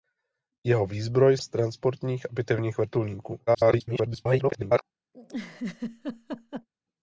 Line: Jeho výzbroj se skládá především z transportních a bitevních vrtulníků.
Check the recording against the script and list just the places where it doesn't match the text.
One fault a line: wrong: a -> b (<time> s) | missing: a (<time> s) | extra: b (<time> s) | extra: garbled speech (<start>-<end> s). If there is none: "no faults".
missing: se skládá především (1.4 s)
extra: garbled speech (3.5-4.8 s)